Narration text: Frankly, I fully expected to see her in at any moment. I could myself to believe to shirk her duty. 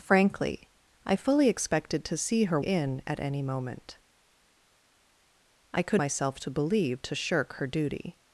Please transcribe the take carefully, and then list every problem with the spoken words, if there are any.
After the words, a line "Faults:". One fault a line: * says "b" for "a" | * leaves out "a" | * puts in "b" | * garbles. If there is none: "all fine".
Frankly, I fully expected to see her in at any moment. I could myself to believe to shirk her duty.
Faults:
all fine